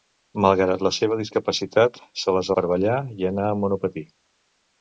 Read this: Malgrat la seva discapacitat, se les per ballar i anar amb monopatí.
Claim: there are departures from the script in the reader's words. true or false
false